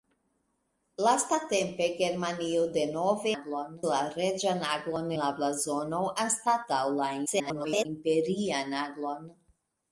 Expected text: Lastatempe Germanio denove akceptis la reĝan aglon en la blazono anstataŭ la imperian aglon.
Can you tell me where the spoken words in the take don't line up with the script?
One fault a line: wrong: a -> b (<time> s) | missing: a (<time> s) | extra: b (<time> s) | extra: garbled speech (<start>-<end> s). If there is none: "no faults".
wrong: akceptis -> aglon (3.3 s)
missing: en (5.1 s)
extra: garbled speech (7.3-7.9 s)